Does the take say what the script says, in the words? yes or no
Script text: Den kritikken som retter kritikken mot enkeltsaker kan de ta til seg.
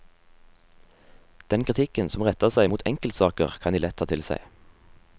no